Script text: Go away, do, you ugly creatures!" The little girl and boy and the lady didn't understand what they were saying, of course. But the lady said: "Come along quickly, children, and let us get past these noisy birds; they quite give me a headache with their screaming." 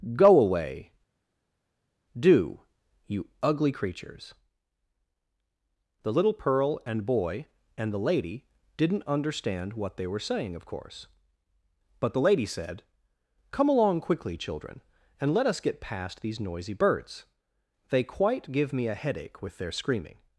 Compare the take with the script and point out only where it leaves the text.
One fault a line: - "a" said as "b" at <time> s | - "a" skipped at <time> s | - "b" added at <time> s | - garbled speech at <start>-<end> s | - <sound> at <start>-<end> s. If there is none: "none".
- "girl" said as "pearl" at 6.3 s